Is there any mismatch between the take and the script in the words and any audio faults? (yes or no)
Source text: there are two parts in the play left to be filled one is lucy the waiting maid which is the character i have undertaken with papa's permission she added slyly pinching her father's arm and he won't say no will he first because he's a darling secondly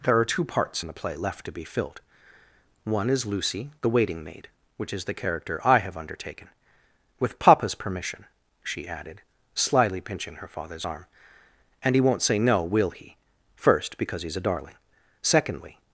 no